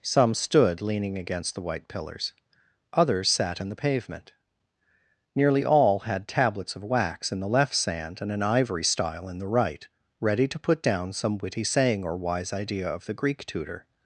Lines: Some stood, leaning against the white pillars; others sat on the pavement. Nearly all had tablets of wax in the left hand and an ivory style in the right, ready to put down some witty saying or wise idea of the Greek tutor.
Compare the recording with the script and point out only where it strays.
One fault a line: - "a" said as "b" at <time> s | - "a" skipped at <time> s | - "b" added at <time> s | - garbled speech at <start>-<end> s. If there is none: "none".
- "on" said as "in" at 3.6 s
- "hand" said as "sand" at 7.8 s